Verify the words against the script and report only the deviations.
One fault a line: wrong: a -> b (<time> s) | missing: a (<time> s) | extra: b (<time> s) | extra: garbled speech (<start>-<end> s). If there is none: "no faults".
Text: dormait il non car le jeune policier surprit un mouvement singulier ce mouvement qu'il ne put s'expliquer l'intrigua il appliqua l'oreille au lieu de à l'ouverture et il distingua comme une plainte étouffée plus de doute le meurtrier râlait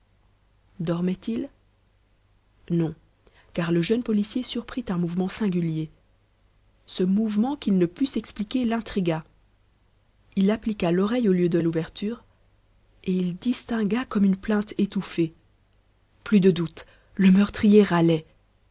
no faults